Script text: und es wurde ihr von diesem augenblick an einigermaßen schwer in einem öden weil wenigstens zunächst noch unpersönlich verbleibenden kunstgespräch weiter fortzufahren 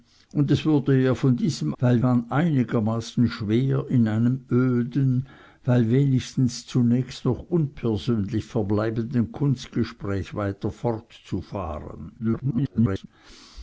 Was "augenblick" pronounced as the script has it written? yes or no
no